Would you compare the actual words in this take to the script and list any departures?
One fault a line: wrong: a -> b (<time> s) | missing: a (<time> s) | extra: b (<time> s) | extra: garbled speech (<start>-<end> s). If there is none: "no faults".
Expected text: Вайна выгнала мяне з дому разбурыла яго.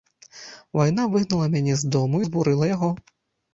no faults